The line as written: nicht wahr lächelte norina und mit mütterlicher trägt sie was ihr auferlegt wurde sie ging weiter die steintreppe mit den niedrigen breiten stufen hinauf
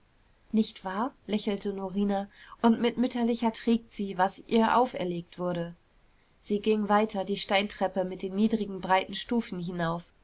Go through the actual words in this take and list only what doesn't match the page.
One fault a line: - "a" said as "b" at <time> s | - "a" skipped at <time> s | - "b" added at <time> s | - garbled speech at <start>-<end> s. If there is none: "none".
none